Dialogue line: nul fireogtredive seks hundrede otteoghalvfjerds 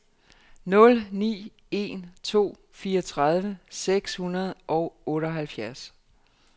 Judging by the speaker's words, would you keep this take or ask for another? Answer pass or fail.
fail